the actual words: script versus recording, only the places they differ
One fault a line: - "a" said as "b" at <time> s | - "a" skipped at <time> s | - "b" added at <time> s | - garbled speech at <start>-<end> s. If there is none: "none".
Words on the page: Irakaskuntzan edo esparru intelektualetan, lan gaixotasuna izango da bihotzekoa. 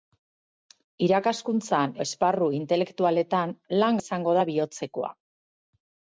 - "edo" skipped at 1.9 s
- "gaixotasuna" skipped at 4.0 s